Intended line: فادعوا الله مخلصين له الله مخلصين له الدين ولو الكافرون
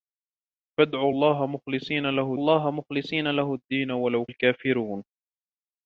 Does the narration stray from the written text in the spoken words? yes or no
no